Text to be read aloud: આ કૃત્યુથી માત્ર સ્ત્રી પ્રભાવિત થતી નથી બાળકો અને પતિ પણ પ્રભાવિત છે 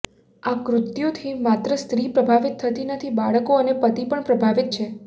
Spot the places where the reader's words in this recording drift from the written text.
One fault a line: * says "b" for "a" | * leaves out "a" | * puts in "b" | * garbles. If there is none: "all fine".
all fine